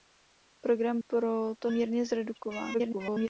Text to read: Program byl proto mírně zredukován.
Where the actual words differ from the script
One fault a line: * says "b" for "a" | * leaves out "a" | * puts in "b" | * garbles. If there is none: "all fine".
* leaves out "byl"
* garbles